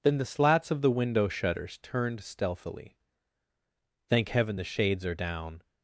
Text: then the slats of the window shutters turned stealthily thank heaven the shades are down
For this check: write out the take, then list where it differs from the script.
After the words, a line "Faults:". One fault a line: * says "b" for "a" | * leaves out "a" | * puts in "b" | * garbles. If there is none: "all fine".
then the slats of the window shutters turned stealthily thank heaven the shades are down
Faults:
all fine